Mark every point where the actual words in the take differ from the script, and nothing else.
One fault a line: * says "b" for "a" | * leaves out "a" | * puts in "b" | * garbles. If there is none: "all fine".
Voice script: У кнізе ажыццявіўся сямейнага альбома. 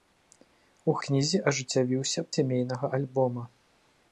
all fine